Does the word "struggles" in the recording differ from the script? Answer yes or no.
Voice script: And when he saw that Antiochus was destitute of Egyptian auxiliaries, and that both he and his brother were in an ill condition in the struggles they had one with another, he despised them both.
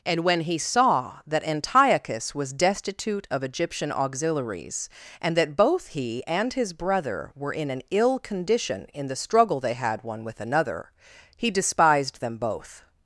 yes